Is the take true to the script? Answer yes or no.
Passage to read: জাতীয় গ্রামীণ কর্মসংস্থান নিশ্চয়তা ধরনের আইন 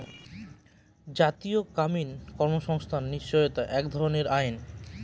no